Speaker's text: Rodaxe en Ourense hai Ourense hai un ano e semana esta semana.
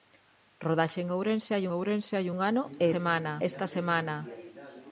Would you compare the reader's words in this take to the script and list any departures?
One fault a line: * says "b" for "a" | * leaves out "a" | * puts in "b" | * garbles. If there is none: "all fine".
all fine